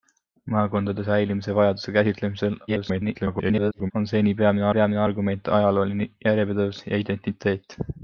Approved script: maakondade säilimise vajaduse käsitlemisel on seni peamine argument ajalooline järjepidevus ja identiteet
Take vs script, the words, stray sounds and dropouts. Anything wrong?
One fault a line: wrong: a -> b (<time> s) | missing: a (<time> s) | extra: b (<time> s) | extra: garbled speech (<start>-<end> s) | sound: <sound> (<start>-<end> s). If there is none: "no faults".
extra: garbled speech (2.7-3.9 s)
extra: peamine (4.8 s)